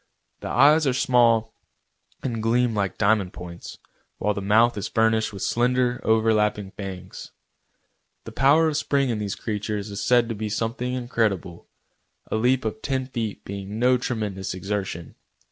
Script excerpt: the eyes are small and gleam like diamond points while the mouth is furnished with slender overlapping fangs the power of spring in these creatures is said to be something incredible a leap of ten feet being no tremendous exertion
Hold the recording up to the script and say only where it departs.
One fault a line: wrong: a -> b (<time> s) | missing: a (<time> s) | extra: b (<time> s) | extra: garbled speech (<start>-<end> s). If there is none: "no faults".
no faults